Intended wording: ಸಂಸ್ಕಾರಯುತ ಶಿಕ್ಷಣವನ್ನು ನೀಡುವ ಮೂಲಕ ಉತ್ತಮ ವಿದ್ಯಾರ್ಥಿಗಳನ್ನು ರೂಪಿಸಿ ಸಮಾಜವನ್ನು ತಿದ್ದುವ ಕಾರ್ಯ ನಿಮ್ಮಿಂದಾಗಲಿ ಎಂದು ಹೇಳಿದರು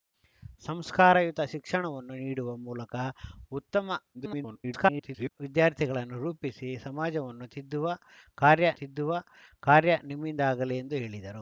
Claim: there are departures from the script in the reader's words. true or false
true